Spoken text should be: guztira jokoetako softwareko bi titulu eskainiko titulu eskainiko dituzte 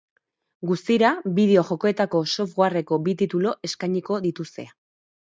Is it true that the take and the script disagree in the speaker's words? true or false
true